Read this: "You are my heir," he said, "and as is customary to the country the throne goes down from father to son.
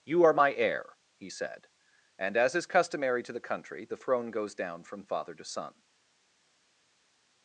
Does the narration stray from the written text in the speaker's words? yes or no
no